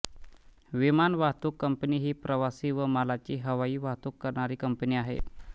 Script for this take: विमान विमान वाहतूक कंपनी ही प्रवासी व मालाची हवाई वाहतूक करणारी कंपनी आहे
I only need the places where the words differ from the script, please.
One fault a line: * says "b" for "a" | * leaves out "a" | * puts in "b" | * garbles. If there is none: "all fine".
* leaves out "विमान"